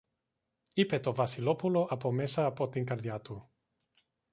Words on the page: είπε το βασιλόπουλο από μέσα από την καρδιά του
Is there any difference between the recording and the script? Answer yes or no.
no